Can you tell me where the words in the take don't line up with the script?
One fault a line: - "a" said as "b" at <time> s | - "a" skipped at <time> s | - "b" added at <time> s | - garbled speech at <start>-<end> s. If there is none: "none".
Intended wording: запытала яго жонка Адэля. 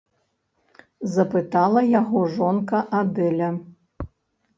none